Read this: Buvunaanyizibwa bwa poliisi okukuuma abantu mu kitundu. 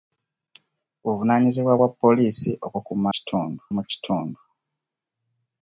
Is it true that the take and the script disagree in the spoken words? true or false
true